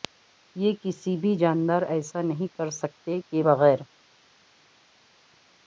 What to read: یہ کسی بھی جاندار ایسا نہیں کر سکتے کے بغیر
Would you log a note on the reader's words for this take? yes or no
no